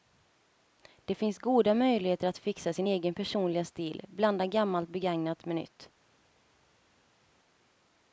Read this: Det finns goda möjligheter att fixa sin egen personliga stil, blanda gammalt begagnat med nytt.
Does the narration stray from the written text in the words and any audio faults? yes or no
no